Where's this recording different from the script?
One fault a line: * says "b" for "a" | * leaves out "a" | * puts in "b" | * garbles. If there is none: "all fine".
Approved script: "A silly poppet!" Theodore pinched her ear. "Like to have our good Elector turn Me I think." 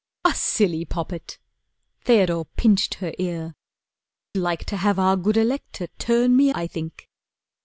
all fine